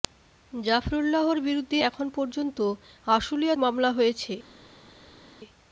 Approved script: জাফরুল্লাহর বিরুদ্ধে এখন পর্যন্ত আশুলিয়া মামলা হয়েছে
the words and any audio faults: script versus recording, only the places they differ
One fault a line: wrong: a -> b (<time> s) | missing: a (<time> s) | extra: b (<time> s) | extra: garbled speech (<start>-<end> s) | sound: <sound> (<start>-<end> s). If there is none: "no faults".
no faults